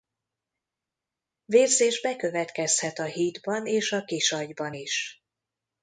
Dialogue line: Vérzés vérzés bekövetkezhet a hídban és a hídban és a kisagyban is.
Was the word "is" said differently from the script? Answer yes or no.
no